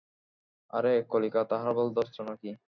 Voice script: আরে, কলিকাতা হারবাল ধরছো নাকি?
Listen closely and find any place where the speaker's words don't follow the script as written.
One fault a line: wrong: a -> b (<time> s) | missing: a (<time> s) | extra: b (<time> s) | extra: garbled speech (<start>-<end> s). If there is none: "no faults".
no faults